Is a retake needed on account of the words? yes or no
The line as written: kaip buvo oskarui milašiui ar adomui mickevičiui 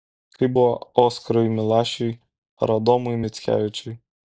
no